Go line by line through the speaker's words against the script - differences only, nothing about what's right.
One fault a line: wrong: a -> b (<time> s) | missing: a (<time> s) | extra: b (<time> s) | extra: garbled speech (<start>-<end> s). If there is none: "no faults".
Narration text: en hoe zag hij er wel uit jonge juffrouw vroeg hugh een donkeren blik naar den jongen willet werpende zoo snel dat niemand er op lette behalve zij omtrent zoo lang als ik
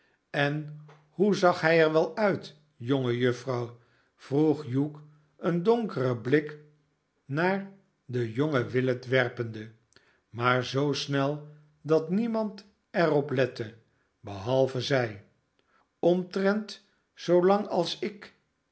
extra: maar (10.3 s)